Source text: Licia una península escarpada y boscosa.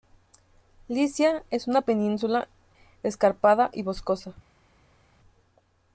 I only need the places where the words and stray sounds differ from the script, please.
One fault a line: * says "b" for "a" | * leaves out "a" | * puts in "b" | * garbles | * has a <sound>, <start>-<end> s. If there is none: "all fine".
* puts in "es"